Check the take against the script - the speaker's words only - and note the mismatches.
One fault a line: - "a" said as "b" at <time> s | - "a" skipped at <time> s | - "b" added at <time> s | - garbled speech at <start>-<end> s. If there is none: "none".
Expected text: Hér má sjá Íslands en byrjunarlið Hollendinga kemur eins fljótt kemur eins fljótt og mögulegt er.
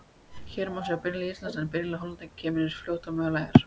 - "byrjunarlið" added at 1.0 s
- "kemur eins fljótt" skipped at 3.1 s